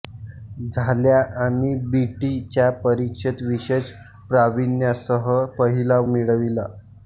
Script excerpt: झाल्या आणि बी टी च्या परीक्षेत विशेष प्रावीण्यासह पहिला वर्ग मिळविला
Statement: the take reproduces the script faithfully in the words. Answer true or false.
false